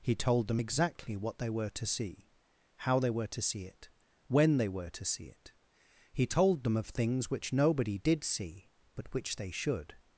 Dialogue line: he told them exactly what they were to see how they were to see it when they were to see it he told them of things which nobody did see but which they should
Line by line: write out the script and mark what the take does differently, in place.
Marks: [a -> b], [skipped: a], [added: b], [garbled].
he told them exactly what they were to see how they were to see it when they were to see it he told them of things which nobody did see but which they should